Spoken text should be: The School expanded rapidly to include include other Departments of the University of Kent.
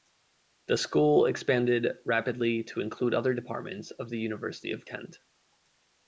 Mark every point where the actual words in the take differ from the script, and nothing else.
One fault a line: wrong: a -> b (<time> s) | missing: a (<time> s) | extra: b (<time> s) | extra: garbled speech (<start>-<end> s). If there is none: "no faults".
missing: include (3.1 s)